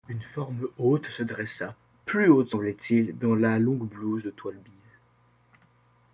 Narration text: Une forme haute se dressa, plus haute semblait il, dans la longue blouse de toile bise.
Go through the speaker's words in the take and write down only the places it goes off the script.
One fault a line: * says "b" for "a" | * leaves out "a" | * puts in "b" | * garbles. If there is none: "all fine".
all fine